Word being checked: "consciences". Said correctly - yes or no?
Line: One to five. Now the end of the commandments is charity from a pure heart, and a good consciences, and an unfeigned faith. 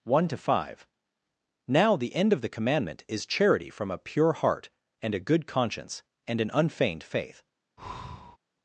no